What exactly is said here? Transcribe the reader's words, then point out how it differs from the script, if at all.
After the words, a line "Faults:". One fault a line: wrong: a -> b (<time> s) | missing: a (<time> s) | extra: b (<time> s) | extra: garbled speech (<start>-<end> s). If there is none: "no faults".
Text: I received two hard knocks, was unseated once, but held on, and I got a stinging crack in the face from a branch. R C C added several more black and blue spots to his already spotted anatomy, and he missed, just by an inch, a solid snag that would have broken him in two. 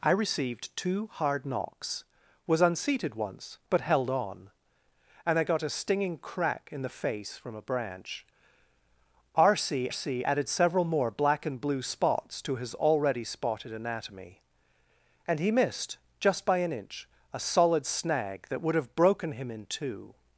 I received two hard knocks, was unseated once, but held on, and I got a stinging crack in the face from a branch. R C C added several more black and blue spots to his already spotted anatomy, and he missed, just by an inch, a solid snag that would have broken him in two.
Faults:
no faults